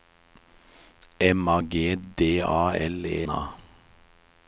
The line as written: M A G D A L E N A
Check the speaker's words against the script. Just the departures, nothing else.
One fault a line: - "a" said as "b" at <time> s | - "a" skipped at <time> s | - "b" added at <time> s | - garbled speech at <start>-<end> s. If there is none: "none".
- "N" skipped at 3.3 s